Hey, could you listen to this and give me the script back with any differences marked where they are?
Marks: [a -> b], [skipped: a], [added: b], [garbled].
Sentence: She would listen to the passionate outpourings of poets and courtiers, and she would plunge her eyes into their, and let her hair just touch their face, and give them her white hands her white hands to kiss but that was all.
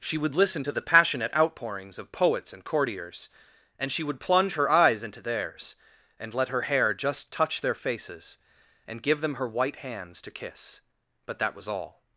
She would listen to the passionate outpourings of poets and courtiers, and she would plunge her eyes into [their, -> theirs] and let her hair just touch their [face, -> faces] and give them her white hands [skipped: her white hands] to kiss but that was all.